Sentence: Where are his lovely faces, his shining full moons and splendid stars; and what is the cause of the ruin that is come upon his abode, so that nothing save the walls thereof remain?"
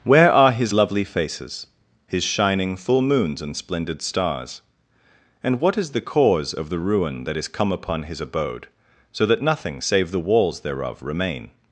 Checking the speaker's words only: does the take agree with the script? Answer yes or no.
yes